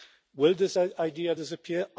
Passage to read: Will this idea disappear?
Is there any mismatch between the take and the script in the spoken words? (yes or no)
no